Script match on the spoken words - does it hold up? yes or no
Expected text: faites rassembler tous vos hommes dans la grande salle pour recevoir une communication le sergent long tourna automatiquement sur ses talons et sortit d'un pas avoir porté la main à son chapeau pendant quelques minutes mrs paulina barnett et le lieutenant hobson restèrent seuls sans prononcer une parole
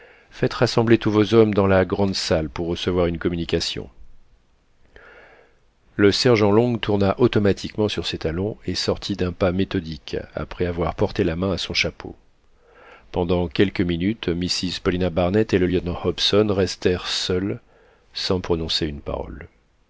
no